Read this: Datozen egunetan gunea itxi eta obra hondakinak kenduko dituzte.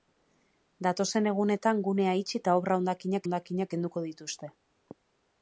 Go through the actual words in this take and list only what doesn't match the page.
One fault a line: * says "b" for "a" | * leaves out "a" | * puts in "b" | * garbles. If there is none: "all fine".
* puts in "hondakinak"